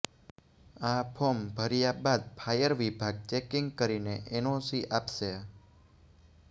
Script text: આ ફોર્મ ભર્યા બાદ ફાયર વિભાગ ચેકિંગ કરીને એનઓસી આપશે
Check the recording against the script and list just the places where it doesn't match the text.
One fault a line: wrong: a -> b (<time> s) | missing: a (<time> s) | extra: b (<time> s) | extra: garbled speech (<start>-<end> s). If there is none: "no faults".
no faults